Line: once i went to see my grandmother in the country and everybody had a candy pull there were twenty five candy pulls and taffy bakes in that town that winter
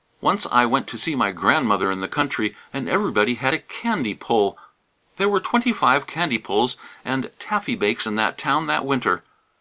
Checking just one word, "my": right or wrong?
right